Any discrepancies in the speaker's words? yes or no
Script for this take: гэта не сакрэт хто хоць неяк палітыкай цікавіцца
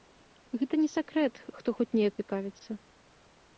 yes